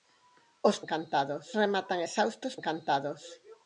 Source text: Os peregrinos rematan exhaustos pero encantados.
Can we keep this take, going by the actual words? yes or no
no